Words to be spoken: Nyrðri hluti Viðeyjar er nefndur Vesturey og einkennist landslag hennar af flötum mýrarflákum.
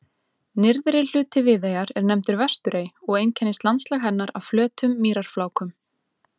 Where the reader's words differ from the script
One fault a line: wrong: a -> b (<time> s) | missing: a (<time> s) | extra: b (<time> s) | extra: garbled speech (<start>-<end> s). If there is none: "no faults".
no faults